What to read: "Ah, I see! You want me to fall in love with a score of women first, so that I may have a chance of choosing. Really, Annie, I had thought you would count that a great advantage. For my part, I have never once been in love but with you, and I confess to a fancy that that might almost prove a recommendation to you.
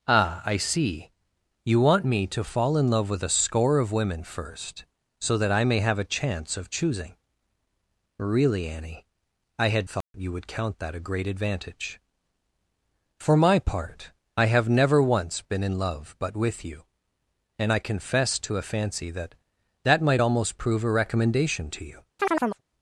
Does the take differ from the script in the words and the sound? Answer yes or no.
yes